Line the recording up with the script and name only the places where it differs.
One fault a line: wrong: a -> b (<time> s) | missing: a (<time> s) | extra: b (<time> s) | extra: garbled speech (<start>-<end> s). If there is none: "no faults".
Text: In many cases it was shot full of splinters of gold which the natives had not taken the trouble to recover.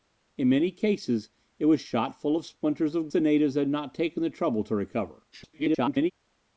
missing: gold which (3.1 s)
extra: garbled speech (5.3-6.1 s)